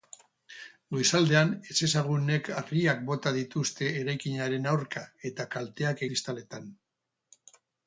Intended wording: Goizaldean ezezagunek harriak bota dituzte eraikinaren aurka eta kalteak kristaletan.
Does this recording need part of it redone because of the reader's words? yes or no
no